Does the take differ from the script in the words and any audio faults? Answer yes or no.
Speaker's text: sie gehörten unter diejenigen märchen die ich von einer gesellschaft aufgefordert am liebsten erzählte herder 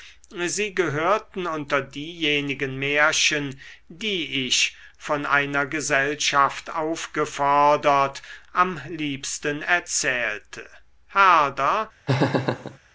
yes